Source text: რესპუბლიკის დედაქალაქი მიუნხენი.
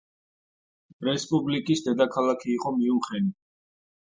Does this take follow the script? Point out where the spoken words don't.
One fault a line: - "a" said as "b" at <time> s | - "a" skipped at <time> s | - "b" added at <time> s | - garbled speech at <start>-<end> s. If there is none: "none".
- "იყო" added at 2.5 s